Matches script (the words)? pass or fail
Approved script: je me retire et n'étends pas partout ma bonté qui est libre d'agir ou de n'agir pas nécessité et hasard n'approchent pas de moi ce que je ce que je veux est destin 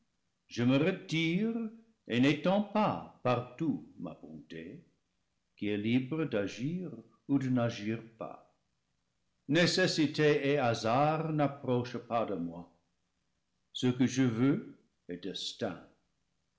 fail